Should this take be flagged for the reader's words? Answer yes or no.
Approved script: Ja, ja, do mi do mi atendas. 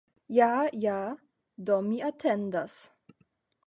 yes